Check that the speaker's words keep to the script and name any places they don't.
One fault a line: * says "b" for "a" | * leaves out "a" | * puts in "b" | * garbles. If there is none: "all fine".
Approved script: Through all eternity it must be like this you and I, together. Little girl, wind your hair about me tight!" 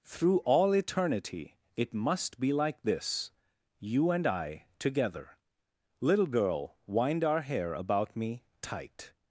* says "our" for "your"